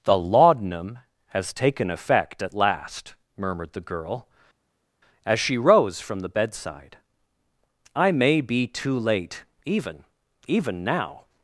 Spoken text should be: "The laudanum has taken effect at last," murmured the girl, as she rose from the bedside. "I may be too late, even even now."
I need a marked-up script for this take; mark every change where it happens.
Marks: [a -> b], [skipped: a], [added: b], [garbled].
"The laudanum has taken effect at last," murmured the girl, as she rose from the bedside. "I may be too late, even even now."